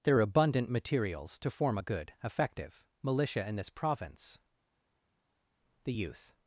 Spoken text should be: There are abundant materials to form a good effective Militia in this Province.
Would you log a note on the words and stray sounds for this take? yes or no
yes